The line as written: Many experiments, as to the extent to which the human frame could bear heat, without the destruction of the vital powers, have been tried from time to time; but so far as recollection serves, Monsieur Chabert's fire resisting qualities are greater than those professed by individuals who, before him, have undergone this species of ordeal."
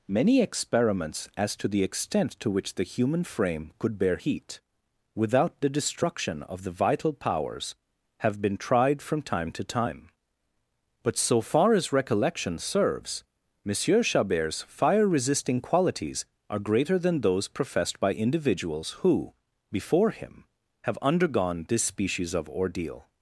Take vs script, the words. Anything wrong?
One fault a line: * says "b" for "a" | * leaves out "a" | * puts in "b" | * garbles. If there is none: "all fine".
all fine